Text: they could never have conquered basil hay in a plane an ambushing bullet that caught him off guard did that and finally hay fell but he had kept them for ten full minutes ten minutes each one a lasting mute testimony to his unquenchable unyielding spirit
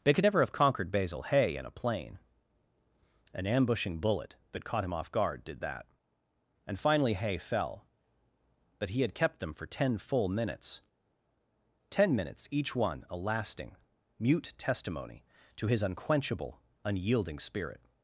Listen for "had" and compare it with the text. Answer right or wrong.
right